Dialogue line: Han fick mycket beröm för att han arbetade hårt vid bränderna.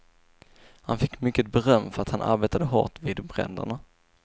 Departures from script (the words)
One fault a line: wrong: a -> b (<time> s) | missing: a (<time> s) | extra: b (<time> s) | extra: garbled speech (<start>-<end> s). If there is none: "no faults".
no faults